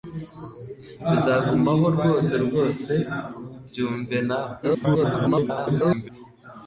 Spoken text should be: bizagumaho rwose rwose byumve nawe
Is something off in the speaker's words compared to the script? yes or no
yes